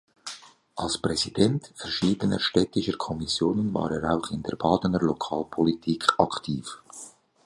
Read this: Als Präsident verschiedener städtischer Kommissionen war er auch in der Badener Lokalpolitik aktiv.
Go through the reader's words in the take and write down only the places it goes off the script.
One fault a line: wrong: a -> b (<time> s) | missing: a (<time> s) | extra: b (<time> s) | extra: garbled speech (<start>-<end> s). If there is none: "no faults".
no faults